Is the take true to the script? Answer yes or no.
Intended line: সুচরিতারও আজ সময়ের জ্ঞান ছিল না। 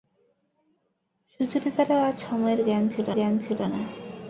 no